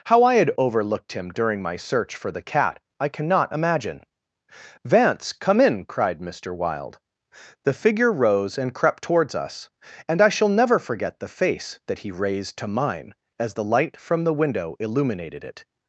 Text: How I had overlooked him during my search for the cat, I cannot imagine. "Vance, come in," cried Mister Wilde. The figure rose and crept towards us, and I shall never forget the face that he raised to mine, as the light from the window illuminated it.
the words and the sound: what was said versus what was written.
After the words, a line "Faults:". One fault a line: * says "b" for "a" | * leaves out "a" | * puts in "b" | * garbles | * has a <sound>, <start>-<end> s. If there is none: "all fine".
How I had overlooked him during my search for the cat, I cannot imagine. "Vance, come in," cried Mister Wilde. The figure rose and crept towards us, and I shall never forget the face that he raised to mine, as the light from the window illuminated it.
Faults:
all fine